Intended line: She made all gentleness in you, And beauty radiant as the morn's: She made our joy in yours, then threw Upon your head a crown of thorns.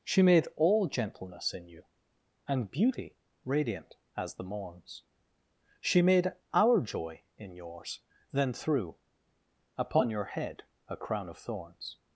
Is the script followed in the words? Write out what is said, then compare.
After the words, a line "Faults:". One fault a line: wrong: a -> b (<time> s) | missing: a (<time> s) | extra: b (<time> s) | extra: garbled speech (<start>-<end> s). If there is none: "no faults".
She made all gentleness in you, And beauty radiant as the morn's: She made our joy in yours, then threw Upon your head a crown of thorns.
Faults:
no faults